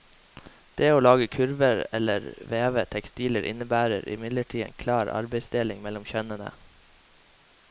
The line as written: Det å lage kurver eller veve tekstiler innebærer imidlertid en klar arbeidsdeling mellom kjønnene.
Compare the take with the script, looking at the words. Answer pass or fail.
pass